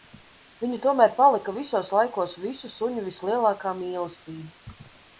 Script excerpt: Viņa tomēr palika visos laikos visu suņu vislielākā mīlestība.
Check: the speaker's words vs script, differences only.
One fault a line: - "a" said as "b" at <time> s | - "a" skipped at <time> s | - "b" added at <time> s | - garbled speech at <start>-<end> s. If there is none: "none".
none